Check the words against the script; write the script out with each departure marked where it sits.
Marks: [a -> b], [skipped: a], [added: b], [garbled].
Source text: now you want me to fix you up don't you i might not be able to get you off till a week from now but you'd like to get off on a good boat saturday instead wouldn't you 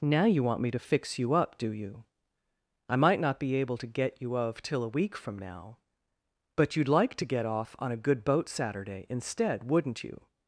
now you want me to fix you up [don't -> do] you i might not be able to get you [off -> of] till a week from now but you'd like to get off on a good boat saturday instead wouldn't you